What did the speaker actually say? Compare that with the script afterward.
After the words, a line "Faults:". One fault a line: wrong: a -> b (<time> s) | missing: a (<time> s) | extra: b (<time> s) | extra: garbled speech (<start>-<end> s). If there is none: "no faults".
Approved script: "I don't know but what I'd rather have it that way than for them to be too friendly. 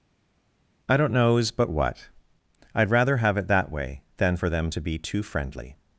"I don't knows but what I'd rather have it that way than for them to be too friendly.
Faults:
wrong: know -> knows (1.1 s)